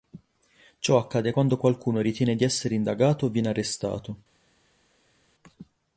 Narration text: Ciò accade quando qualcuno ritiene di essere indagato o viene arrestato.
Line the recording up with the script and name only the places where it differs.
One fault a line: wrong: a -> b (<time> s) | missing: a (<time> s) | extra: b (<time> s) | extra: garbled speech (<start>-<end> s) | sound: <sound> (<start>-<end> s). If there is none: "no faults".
no faults